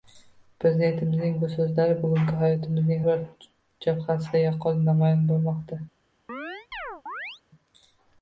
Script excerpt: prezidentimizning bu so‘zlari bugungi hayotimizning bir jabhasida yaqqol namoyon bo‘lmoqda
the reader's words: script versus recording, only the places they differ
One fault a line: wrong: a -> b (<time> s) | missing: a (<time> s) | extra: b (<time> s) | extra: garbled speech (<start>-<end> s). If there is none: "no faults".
no faults